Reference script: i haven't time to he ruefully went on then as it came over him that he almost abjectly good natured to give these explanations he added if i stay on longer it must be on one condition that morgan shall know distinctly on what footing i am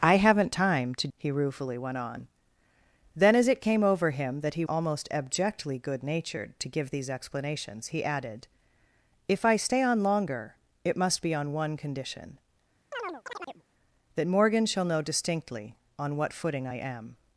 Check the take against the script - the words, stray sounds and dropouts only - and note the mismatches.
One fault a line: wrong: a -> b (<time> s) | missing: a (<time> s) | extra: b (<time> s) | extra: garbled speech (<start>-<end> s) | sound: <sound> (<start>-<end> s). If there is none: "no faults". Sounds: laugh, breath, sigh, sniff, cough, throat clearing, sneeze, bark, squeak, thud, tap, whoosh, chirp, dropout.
sound: chirp (12.9-13.6 s)